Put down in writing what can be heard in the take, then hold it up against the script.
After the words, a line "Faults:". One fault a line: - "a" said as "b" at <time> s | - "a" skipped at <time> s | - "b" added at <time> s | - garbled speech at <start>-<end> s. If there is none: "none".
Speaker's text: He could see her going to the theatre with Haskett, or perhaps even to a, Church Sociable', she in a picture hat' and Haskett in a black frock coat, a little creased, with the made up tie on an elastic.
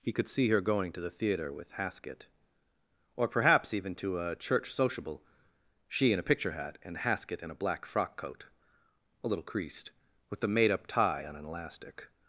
He could see her going to the theatre with Haskett, or perhaps even to a, Church Sociable', she in a picture hat' and Haskett in a black frock coat, a little creased, with the made up tie on an elastic.
Faults:
none